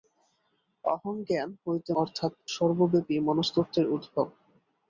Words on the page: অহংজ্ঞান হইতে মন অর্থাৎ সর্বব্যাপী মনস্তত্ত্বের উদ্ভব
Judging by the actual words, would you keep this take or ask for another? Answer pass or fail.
fail